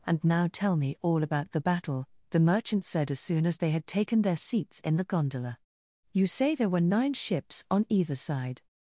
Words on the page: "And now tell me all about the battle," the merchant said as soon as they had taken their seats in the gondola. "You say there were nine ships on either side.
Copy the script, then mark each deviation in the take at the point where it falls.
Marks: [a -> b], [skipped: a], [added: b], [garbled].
"And now tell me all about the battle," the merchant said as soon as they had taken their seats in the gondola. "You say there were nine ships on either side.